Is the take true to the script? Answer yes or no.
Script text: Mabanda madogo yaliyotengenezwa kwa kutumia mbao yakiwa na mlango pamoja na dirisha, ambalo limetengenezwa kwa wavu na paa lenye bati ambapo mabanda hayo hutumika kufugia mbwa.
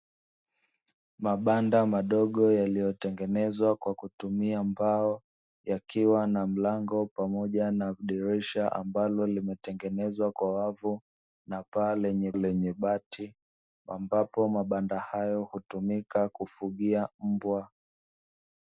no